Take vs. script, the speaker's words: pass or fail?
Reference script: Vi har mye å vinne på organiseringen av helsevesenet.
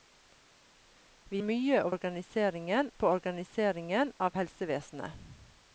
fail